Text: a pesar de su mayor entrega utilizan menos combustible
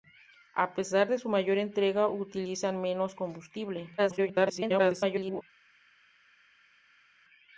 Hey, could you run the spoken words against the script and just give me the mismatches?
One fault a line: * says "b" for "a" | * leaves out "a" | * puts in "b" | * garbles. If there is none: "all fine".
* garbles